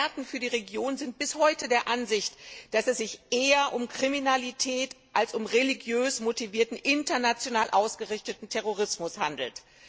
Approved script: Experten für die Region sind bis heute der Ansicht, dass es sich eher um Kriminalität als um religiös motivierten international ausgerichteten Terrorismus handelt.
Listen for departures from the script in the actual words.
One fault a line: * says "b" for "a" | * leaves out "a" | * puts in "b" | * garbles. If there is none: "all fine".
all fine